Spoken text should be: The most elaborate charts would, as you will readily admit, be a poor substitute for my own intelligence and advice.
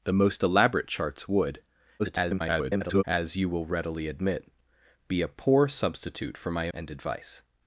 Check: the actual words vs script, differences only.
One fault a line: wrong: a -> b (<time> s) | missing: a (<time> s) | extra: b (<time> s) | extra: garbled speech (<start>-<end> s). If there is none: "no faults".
extra: garbled speech (2.0-3.0 s)
missing: own intelligence (6.7 s)